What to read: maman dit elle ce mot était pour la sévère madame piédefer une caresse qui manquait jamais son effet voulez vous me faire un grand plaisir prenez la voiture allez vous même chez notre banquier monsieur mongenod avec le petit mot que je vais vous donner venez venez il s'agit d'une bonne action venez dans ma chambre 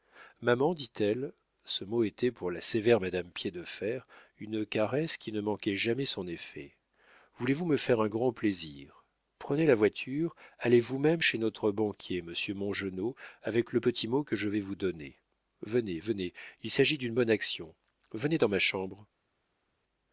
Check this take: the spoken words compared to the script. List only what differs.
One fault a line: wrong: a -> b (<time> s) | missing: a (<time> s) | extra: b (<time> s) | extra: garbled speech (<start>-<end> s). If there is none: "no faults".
extra: ne (5.3 s)